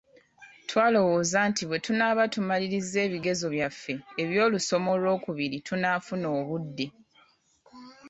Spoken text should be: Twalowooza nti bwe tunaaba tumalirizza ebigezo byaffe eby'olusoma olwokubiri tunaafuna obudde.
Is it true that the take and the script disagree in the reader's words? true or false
false